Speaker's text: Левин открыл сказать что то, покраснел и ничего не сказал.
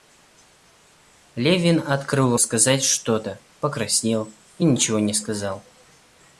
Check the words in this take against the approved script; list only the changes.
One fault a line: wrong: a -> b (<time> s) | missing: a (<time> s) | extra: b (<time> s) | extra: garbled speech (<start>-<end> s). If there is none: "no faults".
no faults